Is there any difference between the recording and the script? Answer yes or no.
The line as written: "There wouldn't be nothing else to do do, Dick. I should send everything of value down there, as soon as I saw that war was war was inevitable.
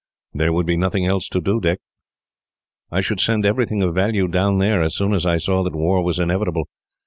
yes